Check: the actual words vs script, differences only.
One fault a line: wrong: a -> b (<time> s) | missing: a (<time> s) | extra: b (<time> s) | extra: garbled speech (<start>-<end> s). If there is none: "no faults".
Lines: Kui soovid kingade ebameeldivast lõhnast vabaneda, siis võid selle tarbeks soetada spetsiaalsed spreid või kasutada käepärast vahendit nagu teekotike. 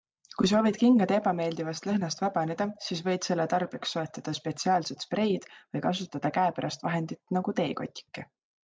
no faults